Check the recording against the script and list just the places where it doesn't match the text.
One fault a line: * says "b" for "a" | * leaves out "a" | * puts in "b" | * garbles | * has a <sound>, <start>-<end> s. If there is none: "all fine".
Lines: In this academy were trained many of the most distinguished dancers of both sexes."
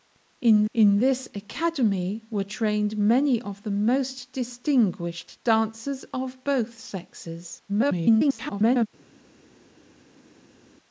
* puts in "in"
* garbles